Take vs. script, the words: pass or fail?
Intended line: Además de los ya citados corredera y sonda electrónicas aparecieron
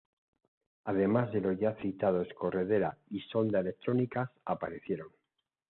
pass